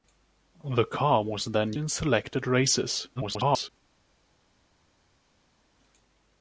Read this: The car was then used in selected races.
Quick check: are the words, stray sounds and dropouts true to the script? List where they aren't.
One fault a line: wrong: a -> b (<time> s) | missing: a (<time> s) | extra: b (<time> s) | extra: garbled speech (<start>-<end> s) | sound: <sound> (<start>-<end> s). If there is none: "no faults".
missing: used (1.7 s)
extra: garbled speech (3.2-3.7 s)